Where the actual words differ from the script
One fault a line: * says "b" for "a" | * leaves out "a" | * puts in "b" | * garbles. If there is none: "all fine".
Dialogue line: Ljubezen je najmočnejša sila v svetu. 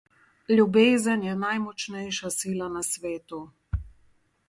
* says "na" for "v"